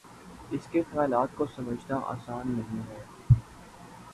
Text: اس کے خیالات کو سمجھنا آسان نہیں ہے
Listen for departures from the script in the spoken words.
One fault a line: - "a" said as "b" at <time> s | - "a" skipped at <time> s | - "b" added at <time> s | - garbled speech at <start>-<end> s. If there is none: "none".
none